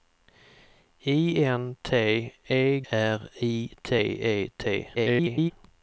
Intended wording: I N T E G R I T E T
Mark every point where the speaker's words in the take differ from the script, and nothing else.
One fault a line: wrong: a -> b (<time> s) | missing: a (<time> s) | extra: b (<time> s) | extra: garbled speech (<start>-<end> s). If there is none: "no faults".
missing: G (2.8 s)
extra: garbled speech (4.9-5.5 s)